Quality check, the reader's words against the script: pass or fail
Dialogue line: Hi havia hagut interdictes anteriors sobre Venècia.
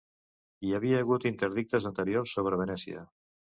pass